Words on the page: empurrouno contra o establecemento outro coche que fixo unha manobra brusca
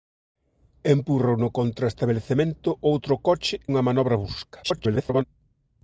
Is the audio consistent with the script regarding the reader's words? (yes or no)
no